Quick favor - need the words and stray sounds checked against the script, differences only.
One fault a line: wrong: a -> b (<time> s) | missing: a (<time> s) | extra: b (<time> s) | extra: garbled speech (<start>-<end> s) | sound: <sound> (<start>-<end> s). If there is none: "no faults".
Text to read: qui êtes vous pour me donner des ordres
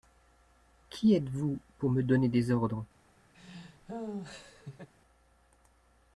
sound: laugh (3.3-4.9 s)